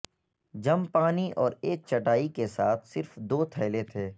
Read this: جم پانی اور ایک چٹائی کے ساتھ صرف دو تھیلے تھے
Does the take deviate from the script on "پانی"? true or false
false